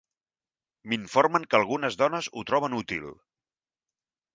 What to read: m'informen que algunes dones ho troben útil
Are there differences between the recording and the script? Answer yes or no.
no